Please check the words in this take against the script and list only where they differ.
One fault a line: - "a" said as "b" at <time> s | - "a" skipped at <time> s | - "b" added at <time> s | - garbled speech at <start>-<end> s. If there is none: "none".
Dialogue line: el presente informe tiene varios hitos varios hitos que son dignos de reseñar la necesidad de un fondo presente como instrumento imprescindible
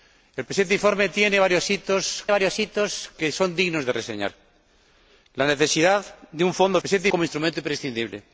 none